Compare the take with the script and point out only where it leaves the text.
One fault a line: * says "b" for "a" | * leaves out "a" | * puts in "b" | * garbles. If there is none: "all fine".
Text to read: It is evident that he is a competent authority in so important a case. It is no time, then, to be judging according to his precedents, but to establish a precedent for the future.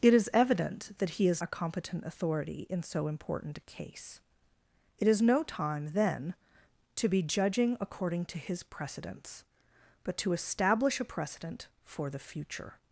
all fine